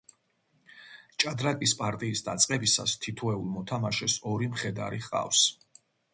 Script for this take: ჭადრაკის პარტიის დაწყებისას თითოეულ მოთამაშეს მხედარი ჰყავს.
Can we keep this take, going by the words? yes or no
no